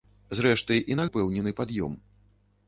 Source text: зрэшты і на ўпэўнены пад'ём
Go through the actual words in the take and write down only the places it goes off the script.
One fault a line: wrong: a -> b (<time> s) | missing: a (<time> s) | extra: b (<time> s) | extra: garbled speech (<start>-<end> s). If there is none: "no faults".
no faults